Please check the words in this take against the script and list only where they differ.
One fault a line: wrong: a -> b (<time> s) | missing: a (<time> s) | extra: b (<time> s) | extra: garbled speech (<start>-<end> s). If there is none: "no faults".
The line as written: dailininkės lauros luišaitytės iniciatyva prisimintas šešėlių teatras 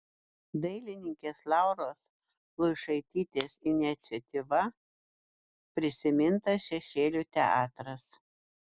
no faults